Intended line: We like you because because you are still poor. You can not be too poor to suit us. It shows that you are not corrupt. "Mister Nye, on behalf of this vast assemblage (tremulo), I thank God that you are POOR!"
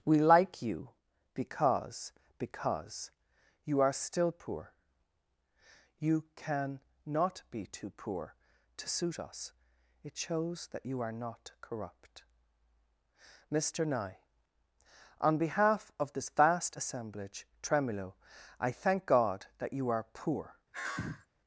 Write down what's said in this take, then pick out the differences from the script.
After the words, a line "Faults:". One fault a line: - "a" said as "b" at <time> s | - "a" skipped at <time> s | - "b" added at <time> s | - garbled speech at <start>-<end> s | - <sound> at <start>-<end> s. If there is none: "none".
We like you because because you are still poor. You can not be too poor to suit us. It shows that you are not corrupt. "Mister Nye, on behalf of this vast assemblage (tremulo), I thank God that you are POOR!"
Faults:
- sigh at 20.7-21.3 s